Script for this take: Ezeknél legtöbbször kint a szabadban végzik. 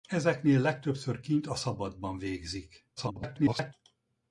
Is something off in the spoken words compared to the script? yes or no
yes